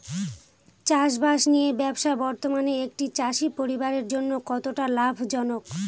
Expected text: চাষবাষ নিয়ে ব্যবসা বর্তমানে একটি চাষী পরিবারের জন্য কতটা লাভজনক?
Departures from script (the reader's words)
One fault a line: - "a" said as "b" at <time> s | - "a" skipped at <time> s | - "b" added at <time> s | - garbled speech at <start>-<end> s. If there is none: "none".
none